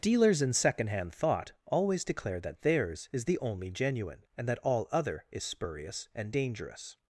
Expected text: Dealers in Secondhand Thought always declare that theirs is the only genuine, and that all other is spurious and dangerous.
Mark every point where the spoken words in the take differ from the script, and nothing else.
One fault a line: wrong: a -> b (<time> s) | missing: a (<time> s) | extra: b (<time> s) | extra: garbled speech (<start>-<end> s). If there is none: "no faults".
no faults